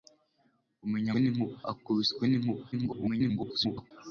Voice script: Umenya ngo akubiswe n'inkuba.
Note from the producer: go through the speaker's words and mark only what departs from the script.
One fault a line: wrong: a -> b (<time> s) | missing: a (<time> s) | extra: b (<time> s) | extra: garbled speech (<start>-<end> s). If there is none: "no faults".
wrong: ngo -> n'inkuba (1.2 s)
extra: garbled speech (2.7-3.9 s)